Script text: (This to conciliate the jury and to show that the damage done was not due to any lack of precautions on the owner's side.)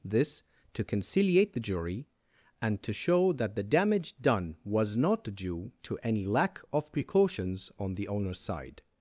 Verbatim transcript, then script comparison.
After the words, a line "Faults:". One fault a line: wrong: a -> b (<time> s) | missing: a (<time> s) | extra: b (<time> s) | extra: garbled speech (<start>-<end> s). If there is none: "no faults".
(This to conciliate the jury and to show that the damage done was not due to any lack of precautions on the owner's side.)
Faults:
no faults